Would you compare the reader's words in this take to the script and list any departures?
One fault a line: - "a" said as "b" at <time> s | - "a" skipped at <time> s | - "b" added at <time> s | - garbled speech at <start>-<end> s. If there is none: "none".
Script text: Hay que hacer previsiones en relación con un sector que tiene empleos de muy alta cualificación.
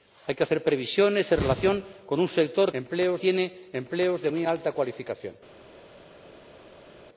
- "que" said as "empleos" at 2.7 s